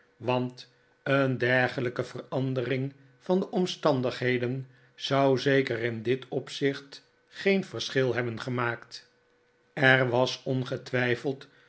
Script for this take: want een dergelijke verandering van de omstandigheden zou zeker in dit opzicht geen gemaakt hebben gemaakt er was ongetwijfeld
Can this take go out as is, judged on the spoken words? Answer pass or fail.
fail